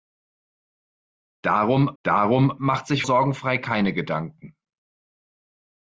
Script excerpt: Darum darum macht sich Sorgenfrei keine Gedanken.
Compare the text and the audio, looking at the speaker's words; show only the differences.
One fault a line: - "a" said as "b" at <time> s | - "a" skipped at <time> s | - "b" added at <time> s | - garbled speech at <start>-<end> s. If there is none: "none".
none